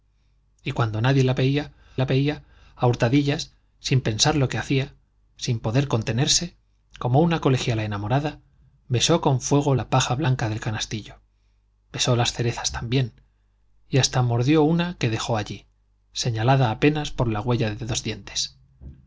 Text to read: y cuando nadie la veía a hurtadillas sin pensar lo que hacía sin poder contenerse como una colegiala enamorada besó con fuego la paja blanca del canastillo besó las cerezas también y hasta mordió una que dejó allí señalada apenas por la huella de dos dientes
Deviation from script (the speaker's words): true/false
true